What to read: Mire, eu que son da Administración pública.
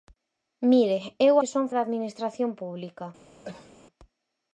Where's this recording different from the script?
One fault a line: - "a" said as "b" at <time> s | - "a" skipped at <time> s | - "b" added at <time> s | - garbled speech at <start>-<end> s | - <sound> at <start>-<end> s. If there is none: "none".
- cough at 3.4-3.7 s